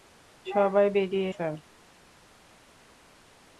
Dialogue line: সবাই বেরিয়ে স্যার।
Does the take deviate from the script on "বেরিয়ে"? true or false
false